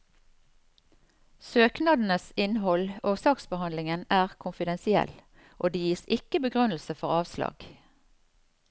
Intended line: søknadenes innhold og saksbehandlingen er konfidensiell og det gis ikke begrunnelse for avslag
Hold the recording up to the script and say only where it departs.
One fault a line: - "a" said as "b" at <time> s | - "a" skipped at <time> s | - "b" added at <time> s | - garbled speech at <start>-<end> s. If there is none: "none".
none